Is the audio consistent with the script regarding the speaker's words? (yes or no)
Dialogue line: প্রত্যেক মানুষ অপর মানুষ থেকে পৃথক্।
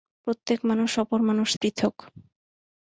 no